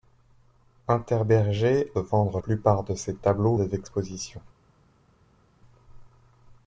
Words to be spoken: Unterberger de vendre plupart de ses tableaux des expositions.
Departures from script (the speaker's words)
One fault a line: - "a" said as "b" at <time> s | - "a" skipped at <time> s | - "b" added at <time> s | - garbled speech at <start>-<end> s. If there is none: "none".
none